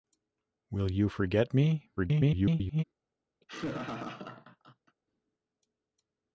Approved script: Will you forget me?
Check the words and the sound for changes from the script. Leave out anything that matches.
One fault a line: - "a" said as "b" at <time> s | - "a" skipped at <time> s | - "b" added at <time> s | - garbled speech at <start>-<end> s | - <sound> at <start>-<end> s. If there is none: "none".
- garbled speech at 2.0-2.8 s
- laugh at 3.4-5.0 s